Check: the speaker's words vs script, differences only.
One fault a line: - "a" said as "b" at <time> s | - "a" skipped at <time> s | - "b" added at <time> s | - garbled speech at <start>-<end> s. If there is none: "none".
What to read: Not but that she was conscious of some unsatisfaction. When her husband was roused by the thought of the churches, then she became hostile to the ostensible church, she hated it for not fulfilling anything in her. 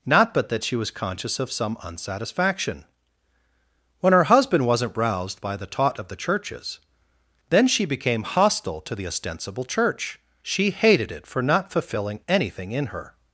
- "was" said as "wasn't" at 4.6 s
- "thought" said as "taught" at 5.7 s